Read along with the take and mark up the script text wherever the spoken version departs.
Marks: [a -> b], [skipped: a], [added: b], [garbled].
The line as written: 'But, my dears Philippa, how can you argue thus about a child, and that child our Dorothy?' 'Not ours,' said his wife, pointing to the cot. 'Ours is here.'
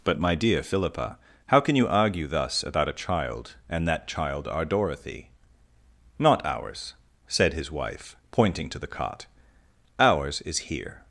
'But, my [dears -> dear] Philippa, how can you argue thus about a child, and that child our Dorothy?' 'Not ours,' said his wife, pointing to the cot. 'Ours is here.'